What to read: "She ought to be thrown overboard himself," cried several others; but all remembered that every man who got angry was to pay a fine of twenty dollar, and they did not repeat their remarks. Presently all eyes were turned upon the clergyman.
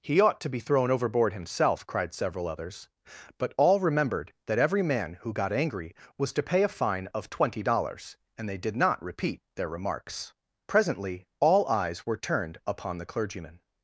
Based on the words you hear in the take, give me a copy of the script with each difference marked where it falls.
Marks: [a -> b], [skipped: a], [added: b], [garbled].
["She -> He] ought to be thrown overboard himself," cried several others; but all remembered that every man who got angry was to pay a fine of twenty [dollar, -> dollars] and they did not repeat their remarks. Presently all eyes were turned upon the clergyman.